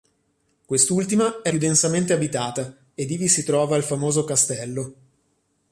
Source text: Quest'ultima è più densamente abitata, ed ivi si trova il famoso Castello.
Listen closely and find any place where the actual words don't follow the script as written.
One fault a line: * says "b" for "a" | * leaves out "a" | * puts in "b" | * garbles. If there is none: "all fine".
all fine